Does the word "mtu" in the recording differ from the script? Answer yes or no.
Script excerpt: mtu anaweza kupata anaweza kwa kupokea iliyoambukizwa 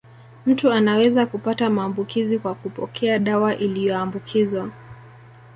no